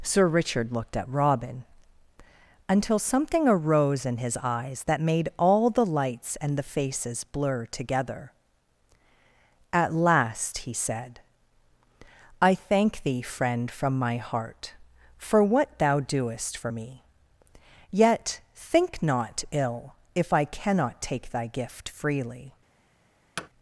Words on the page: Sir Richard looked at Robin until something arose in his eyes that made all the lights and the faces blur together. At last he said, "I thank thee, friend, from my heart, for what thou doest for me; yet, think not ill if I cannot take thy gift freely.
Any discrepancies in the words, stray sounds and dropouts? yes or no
yes